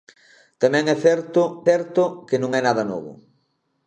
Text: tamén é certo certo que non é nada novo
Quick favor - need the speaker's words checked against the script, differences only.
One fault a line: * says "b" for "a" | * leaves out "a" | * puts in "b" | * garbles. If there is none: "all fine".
all fine